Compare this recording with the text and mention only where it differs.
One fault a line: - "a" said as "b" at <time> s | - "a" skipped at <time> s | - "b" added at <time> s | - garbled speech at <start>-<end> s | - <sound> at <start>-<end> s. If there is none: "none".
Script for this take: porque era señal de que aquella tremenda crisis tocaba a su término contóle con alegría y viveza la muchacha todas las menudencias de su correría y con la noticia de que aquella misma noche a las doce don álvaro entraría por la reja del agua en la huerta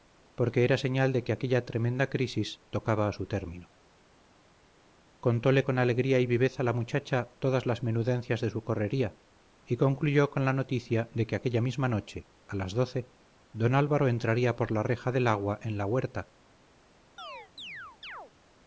- "concluyó" added at 9.8 s
- chirp at 17.2-18.3 s